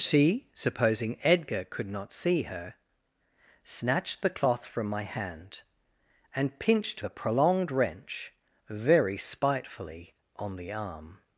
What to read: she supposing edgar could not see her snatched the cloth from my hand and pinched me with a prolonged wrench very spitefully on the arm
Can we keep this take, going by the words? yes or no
no